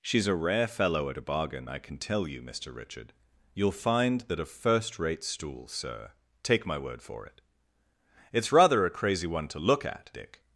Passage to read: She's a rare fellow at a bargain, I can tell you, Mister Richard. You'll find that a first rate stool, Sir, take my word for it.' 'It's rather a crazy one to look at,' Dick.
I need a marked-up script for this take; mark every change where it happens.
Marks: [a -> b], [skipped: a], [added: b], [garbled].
She's a rare fellow at a bargain, I can tell you, Mister Richard. You'll find that a first rate stool, Sir, take my word for it.' 'It's rather a crazy one to look at,' Dick.